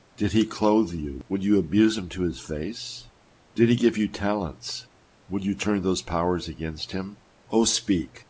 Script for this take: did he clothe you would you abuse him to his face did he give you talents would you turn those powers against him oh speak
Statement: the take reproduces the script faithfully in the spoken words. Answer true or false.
true